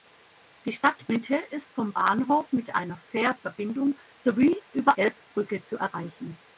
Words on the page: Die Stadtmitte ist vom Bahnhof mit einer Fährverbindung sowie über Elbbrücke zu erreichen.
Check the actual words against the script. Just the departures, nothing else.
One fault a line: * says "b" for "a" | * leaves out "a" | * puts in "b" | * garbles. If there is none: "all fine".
all fine